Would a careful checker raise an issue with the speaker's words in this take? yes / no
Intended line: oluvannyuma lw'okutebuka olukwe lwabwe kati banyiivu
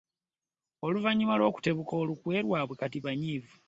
no